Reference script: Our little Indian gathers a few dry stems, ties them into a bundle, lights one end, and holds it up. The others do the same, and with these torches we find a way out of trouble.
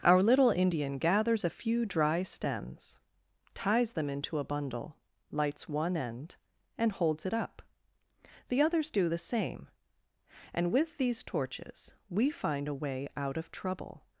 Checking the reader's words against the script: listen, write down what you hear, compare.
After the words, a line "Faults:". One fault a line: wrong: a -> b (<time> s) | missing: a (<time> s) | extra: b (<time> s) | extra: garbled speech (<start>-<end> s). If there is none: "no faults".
Our little Indian gathers a few dry stems, ties them into a bundle, lights one end, and holds it up. The others do the same, and with these torches we find a way out of trouble.
Faults:
no faults